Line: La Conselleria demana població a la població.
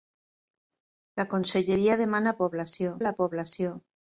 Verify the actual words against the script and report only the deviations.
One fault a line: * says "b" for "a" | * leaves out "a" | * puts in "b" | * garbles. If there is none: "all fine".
all fine